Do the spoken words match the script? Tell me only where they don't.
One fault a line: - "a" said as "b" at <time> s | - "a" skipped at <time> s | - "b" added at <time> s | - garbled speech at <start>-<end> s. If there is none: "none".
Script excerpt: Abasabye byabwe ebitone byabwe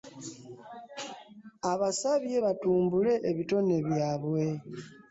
- "byabwe" said as "batumbule" at 2.4 s